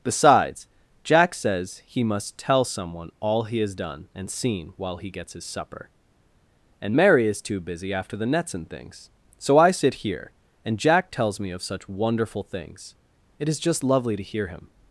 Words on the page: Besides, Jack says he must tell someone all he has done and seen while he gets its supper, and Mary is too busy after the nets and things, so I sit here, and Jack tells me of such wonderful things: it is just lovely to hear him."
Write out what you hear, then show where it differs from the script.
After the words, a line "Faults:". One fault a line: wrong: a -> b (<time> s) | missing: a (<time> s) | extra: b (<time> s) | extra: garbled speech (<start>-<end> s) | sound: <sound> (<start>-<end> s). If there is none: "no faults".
Besides, Jack says he must tell someone all he has done and seen while he gets his supper, and Mary is too busy after the nets and things, so I sit here, and Jack tells me of such wonderful things: it is just lovely to hear him."
Faults:
wrong: its -> his (5.3 s)